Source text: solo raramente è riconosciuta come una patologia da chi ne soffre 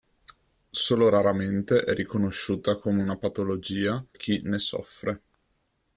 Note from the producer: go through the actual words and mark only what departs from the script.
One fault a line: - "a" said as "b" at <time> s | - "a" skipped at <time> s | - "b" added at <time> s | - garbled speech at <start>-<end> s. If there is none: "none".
- "da" skipped at 4.0 s